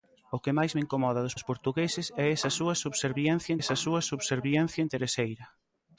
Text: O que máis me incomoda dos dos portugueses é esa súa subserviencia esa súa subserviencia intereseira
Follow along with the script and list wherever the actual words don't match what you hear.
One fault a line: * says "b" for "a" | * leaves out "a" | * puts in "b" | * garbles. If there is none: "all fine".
all fine